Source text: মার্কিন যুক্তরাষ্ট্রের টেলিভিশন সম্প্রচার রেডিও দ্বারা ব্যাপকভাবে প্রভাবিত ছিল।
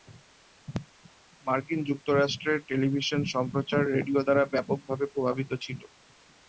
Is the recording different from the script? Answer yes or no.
no